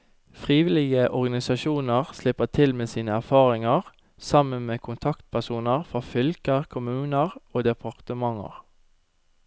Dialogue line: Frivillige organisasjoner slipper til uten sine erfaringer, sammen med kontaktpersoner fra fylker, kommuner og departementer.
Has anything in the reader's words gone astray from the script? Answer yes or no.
yes